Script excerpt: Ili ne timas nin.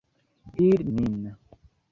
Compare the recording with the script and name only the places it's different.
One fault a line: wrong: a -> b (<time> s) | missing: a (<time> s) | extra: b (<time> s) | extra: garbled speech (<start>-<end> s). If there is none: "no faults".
missing: ne timas (0.9 s)